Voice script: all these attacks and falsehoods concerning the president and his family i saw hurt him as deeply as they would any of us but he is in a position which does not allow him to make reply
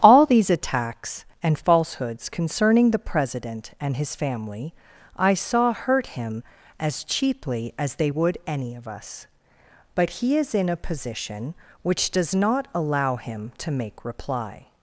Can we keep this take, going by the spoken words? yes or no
no